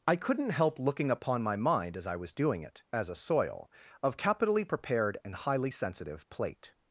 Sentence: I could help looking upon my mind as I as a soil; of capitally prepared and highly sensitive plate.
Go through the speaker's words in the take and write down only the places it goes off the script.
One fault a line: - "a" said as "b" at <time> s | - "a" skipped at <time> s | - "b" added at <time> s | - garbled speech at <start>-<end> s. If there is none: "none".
- "could" said as "couldn't" at 0.1 s
- "was doing it" added at 2.1 s